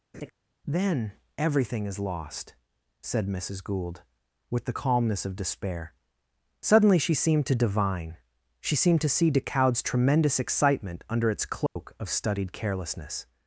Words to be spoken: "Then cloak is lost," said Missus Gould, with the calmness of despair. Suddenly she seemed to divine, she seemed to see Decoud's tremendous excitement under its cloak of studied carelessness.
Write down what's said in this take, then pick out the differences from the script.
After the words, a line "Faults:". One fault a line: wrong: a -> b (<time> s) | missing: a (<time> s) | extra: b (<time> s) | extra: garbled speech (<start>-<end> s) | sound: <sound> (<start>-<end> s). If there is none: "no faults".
"Then everything is lost," said Missus Gould, with the calmness of despair. Suddenly she seemed to divine, she seemed to see Decoud's tremendous excitement under its cloak of studied carelessness.
Faults:
sound: laugh (0.1-0.3 s)
wrong: cloak -> everything (1.4 s)
sound: dropout (11.7-11.8 s)